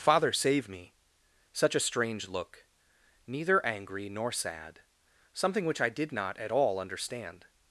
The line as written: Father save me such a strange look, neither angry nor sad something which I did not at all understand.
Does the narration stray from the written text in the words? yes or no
no